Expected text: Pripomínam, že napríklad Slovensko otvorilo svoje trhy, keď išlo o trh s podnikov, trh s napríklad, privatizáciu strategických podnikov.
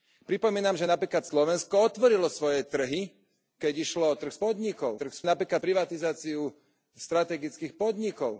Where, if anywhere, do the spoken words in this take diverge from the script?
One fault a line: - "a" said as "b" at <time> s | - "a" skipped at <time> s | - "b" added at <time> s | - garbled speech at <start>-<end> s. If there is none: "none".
none